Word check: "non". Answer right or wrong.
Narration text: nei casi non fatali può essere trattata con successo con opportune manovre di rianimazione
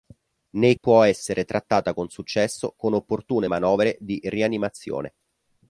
wrong